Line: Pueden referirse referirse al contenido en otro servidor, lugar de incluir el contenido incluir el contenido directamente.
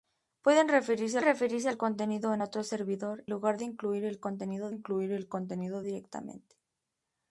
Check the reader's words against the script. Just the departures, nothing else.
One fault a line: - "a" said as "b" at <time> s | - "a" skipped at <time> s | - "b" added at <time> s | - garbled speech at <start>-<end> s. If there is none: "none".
none